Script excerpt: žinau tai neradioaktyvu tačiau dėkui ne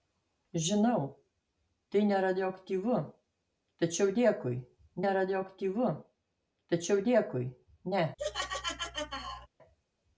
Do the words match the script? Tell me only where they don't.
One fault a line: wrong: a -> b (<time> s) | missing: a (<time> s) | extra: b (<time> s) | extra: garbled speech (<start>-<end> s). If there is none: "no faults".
extra: neradioaktyvu tačiau dėkui (5.1 s)